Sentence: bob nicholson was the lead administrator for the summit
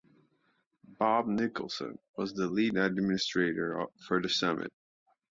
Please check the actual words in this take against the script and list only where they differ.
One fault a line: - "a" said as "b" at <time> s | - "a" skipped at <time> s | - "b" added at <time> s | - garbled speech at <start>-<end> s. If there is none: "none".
none